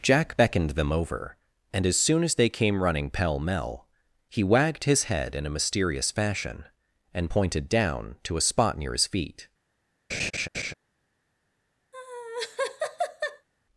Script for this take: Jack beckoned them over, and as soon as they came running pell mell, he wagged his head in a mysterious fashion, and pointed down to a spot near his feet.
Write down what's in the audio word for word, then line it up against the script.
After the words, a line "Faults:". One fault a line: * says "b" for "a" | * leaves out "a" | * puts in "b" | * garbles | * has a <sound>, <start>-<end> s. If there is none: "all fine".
Jack beckoned them over, and as soon as they came running pell mell, he wagged his head in a mysterious fashion, and pointed down to a spot near his feet.
Faults:
* has a laugh, 10.1-10.7 s
* has a laugh, 11.9-13.5 s